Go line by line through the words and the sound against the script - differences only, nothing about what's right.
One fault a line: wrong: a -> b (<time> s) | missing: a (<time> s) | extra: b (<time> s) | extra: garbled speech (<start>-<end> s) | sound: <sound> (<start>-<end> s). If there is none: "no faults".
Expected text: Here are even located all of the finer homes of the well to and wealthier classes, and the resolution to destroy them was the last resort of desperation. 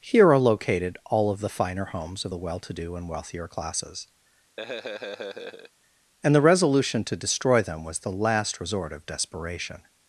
missing: even (0.4 s)
extra: do (2.7 s)
sound: laugh (4.6-5.7 s)